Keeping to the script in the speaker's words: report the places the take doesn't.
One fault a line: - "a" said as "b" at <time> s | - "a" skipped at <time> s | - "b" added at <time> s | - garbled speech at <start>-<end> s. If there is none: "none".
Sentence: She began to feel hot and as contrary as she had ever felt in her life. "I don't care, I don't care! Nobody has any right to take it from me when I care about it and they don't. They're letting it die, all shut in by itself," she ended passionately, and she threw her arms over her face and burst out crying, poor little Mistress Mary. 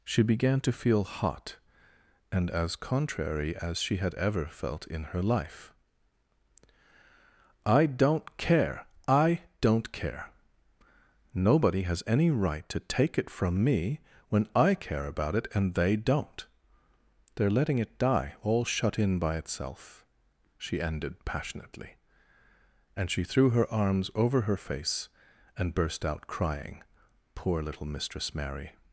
none